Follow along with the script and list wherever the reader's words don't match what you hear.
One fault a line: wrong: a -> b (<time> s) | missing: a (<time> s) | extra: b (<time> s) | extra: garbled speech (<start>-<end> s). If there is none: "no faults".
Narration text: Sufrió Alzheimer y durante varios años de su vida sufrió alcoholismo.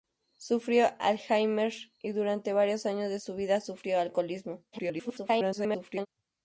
extra: garbled speech (4.7-6.1 s)